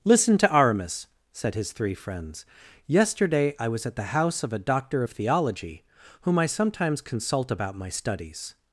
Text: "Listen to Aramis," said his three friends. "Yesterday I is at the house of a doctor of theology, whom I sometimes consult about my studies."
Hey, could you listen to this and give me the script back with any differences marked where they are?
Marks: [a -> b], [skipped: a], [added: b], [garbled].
"Listen to Aramis," said his three friends. "Yesterday I [is -> was] at the house of a doctor of theology, whom I sometimes consult about my studies."